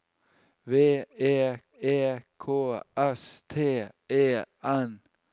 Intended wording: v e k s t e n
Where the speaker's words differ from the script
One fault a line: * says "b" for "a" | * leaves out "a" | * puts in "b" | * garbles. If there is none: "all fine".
* puts in "e"